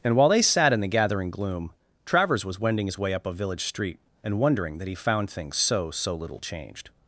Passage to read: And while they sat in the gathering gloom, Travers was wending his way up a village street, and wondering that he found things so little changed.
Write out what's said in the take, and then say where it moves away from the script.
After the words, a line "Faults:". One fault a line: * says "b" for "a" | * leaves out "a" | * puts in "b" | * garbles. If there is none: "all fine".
And while they sat in the gathering gloom, Travers was wending his way up a village street, and wondering that he found things so so little changed.
Faults:
* puts in "so"